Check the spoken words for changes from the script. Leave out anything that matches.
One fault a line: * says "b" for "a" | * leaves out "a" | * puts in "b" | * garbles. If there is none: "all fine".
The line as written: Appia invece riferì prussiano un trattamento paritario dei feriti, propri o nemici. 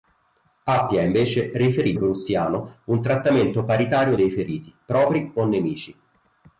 all fine